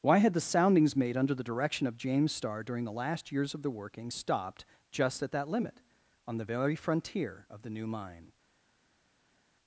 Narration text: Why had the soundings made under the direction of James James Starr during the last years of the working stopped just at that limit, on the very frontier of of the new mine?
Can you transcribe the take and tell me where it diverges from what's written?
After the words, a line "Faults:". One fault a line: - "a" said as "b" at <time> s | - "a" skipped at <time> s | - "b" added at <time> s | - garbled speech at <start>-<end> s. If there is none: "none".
Why had the soundings made under the direction of James Starr during the last years of the working stopped just at that limit, on the very frontier of the new mine?
Faults:
- "James" skipped at 2.3 s
- "of" skipped at 7.6 s